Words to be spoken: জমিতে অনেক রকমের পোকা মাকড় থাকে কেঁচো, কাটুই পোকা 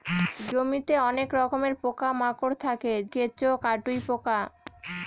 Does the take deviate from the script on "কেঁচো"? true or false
false